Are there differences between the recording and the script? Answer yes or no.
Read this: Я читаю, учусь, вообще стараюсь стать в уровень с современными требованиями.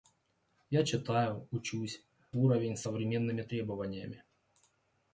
yes